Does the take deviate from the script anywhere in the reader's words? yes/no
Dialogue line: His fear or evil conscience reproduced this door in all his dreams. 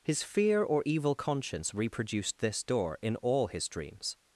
no